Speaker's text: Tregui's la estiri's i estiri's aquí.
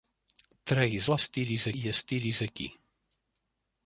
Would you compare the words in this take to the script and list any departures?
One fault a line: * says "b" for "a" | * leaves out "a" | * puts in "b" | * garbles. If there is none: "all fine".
all fine